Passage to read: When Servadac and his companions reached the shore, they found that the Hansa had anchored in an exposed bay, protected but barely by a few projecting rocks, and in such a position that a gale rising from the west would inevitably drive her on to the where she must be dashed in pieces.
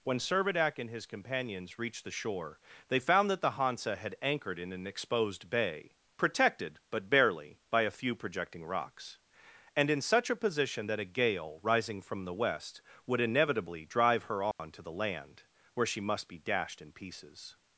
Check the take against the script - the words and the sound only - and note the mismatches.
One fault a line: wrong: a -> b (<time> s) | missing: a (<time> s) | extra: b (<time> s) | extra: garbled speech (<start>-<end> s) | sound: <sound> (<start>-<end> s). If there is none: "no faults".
sound: dropout (14.5-14.6 s)
extra: land (14.9 s)